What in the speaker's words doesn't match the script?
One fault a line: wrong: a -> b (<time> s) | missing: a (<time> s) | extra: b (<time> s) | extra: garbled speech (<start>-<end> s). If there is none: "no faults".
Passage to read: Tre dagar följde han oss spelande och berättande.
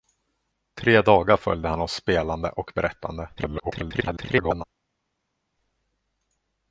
extra: garbled speech (3.4-4.6 s)